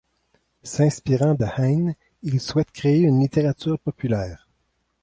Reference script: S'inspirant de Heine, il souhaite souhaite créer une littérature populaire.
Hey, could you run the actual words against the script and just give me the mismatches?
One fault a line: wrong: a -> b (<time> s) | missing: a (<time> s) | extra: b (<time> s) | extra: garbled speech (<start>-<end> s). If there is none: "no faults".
missing: souhaite (2.7 s)